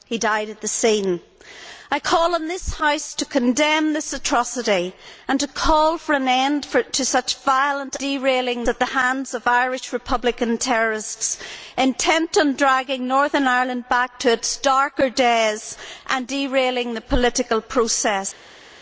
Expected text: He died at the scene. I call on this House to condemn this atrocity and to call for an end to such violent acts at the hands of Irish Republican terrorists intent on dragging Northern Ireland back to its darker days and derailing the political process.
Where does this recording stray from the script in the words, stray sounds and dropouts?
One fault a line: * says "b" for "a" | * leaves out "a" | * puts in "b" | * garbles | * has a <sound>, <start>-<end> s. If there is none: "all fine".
* says "derailing" for "acts"